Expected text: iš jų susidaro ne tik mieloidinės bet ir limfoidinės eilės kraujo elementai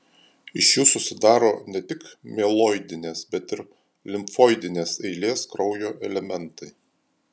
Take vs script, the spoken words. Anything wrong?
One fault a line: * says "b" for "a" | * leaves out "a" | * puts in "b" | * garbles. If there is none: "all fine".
all fine